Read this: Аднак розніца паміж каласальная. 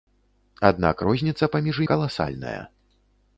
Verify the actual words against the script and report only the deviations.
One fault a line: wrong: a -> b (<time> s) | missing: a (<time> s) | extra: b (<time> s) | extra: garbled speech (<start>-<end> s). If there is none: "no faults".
no faults